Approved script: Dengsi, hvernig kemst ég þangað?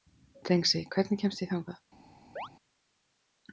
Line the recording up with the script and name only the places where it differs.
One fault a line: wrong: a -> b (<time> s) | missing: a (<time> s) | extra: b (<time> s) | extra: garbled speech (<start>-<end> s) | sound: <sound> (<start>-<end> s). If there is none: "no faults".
sound: chirp (2.4-2.5 s)